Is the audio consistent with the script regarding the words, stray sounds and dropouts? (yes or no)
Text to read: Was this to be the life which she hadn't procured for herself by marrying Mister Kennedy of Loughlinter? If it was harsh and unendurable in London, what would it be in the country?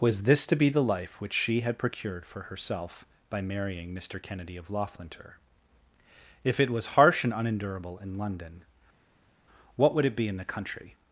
no